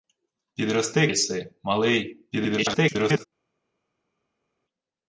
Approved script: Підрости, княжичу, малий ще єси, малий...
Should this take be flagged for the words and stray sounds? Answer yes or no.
yes